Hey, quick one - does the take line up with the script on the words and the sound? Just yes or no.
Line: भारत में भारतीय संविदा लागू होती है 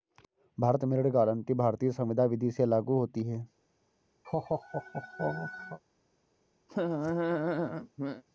no